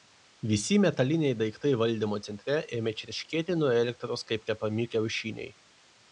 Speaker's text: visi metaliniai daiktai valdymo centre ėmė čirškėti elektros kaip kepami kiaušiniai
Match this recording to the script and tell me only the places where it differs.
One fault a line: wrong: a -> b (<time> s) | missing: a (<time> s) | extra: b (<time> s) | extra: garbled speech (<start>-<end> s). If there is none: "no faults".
extra: nuo (3.6 s)